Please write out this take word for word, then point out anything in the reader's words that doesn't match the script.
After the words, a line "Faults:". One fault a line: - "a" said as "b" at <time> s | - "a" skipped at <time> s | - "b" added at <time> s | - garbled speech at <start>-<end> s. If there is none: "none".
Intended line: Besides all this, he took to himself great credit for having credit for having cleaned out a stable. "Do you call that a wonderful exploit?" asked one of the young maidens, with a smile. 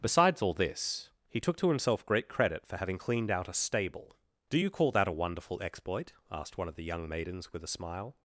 Besides all this, he took to himself great credit for having cleaned out a stable. "Do you call that a wonderful exploit?" asked one of the young maidens, with a smile.
Faults:
- "credit for having" skipped at 3.0 s